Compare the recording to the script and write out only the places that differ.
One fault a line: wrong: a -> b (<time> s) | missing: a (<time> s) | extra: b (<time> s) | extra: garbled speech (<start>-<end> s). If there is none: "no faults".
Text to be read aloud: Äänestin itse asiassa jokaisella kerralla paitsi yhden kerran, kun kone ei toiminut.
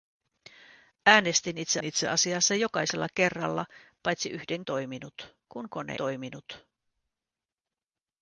extra: itse (1.8 s)
wrong: kerran -> toiminut (4.7 s)
missing: ei (6.0 s)